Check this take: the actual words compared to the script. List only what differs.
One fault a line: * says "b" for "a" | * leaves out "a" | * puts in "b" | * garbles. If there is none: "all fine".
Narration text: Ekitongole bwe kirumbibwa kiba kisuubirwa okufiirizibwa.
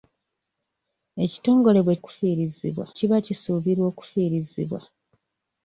* says "okufiirizibwa" for "kirumbibwa"